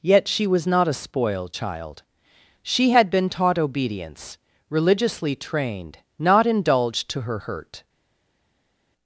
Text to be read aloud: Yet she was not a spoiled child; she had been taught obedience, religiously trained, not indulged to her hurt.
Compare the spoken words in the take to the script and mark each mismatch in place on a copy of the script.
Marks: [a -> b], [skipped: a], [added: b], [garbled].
Yet she was not a spoiled child; she had been taught obedience, religiously trained, not indulged to her hurt.